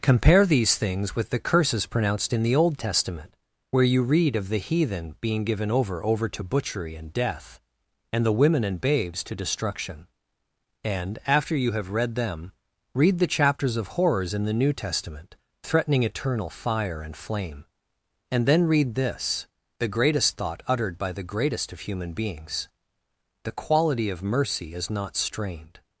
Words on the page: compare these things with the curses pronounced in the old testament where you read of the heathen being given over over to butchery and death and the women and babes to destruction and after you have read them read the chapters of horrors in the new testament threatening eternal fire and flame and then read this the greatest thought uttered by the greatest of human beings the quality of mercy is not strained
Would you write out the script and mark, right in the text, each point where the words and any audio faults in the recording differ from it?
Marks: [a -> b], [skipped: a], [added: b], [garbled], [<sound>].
compare these things with the curses pronounced in the old testament where you read of the heathen being given over over to butchery and death and the women and babes to destruction and after you have read them read the chapters of horrors in the new testament threatening eternal fire and flame and then read this the greatest thought uttered by the greatest of human beings the quality of mercy is not strained